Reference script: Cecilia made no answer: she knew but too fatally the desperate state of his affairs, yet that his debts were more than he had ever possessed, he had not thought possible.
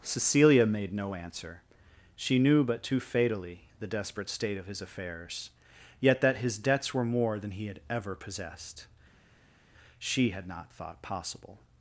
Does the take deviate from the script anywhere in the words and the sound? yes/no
yes